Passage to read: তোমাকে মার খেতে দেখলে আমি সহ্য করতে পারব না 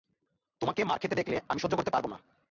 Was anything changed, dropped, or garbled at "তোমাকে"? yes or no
no